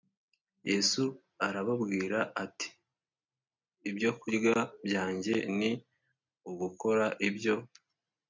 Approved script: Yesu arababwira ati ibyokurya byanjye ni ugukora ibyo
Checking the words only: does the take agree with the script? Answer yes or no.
yes